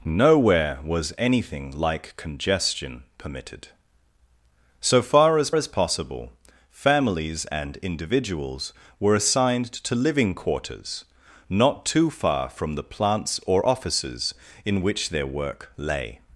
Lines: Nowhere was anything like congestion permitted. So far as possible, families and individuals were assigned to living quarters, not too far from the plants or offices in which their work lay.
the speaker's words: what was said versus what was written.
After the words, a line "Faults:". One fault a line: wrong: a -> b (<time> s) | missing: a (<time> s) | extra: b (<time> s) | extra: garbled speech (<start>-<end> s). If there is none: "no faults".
Nowhere was anything like congestion permitted. So far as as possible, families and individuals were assigned to living quarters, not too far from the plants or offices in which their work lay.
Faults:
extra: as (5.5 s)